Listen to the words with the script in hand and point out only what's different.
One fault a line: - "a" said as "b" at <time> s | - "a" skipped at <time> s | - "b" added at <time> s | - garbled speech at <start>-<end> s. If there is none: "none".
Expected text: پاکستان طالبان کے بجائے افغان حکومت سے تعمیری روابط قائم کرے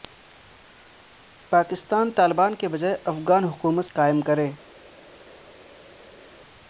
- "سے تعمیری روابط" skipped at 3.9 s